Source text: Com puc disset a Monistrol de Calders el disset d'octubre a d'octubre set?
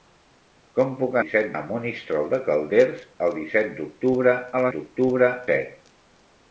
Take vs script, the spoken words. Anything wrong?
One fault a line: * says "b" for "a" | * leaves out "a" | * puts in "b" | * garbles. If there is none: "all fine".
all fine